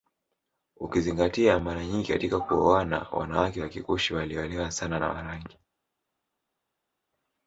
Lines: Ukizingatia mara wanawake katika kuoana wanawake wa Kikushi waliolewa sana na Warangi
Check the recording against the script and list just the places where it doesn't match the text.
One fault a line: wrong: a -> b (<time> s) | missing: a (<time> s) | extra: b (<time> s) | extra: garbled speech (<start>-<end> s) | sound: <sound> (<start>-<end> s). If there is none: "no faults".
wrong: wanawake -> nyingi (1.9 s)